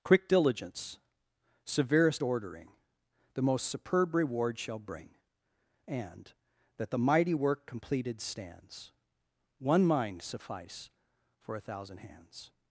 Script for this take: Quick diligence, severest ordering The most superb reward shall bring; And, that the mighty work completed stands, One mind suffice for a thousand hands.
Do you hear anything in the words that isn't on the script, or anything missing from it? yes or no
no